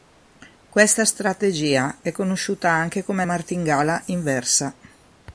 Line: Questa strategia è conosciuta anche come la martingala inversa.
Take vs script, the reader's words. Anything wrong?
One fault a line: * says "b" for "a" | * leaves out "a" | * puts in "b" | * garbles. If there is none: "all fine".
* leaves out "la"